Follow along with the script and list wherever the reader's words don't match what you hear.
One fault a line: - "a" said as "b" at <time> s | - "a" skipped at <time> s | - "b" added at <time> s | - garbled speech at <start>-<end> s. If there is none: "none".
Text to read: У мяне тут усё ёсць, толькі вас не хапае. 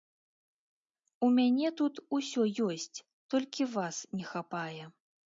none